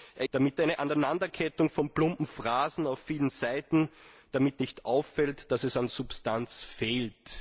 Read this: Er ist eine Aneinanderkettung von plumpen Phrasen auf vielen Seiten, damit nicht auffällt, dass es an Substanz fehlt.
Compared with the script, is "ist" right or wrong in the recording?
wrong